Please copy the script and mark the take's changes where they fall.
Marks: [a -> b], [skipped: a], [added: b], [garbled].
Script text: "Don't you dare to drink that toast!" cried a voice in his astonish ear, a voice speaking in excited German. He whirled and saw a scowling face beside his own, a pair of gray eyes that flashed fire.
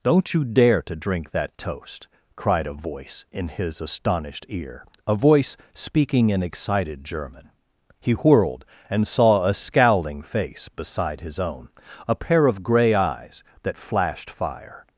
"Don't you dare to drink that toast!" cried a voice in his [astonish -> astonished] ear, a voice speaking in excited German. He whirled and saw a scowling face beside his own, a pair of gray eyes that flashed fire.